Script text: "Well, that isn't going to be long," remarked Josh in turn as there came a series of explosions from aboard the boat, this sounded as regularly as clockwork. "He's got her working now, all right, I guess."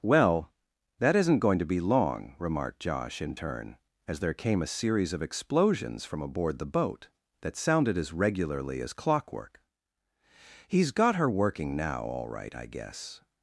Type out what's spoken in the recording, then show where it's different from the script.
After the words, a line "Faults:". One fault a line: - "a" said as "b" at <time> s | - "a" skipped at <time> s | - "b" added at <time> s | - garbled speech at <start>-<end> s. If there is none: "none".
"Well, that isn't going to be long," remarked Josh in turn as there came a series of explosions from aboard the boat, that sounded as regularly as clockwork. "He's got her working now, all right, I guess."
Faults:
- "this" said as "that" at 7.4 s